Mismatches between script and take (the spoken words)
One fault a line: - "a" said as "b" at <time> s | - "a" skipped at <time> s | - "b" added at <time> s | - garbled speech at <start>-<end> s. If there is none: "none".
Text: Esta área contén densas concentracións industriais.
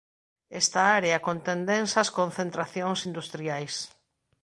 none